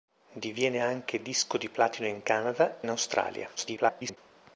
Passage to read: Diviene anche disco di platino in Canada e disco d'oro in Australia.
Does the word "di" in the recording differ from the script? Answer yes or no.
no